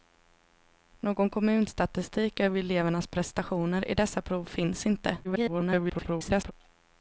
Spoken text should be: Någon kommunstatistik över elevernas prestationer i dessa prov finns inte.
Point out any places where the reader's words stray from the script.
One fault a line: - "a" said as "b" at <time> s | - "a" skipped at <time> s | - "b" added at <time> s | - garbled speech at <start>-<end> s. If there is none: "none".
- garbled speech at 5.2-6.5 s